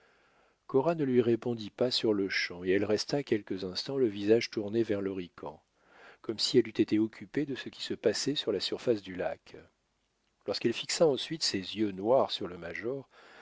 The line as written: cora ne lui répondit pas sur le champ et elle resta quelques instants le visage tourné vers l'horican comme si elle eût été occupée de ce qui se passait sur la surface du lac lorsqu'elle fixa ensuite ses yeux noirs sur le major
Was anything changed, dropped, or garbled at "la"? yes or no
no